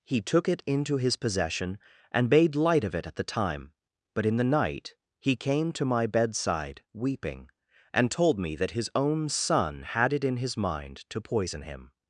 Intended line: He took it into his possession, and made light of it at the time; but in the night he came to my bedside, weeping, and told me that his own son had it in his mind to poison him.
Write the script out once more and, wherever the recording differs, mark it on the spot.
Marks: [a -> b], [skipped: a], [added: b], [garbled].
He took it into his possession, and made light of it at the time; but in the night he came to my bedside, weeping, and told me that his own son had it in his mind to poison him.